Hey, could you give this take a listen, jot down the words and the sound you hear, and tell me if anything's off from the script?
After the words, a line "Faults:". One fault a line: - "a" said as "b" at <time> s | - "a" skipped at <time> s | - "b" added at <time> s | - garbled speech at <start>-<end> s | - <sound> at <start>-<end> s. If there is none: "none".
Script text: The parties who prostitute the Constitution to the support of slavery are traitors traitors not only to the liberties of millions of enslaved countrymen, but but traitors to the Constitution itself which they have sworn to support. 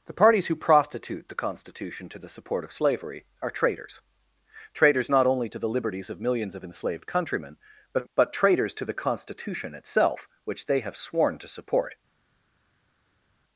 The parties who prostitute the Constitution to the support of slavery are traitors traitors not only to the liberties of millions of enslaved countrymen, but but traitors to the Constitution itself which they have sworn to support.
Faults:
none